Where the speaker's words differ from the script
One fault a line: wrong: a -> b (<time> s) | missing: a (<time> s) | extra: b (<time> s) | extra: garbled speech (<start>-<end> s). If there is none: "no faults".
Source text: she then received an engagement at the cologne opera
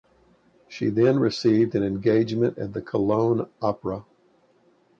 no faults